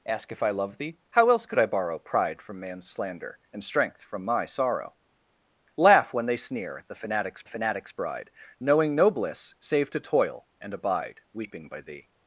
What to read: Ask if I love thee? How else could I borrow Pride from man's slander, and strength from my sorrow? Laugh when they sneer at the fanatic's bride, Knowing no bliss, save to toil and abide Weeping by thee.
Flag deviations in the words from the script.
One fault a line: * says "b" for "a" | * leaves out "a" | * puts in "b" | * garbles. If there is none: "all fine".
* puts in "fanatic's"